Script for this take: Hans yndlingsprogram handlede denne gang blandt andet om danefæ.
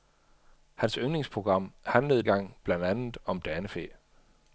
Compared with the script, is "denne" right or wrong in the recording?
wrong